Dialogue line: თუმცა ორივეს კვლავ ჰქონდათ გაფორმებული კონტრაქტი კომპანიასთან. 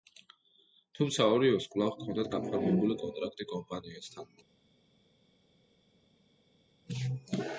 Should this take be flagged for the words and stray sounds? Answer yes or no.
no